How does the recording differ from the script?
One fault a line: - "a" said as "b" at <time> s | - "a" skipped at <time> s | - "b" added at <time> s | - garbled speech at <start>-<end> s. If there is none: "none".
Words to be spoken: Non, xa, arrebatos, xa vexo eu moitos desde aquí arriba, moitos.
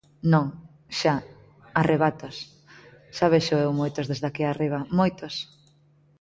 none